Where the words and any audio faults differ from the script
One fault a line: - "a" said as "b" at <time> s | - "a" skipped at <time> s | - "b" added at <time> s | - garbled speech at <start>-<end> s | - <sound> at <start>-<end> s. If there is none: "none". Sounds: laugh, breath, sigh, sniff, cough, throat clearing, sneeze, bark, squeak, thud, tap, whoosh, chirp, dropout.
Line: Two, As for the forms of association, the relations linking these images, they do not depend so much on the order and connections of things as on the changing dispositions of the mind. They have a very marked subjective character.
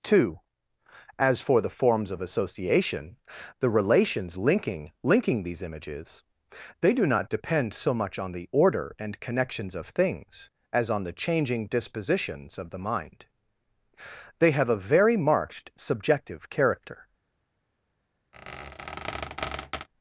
- "linking" added at 5.0 s
- squeak at 18.3-19.9 s